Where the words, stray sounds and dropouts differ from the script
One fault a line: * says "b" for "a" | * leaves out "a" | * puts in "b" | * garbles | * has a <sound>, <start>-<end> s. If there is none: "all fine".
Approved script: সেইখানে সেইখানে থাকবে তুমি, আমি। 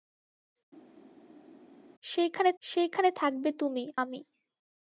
all fine